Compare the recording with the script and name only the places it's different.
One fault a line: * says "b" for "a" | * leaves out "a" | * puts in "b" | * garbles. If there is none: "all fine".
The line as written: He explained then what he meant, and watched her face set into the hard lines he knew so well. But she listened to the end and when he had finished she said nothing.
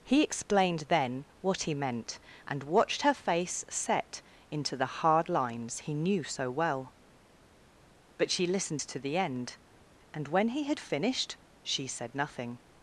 all fine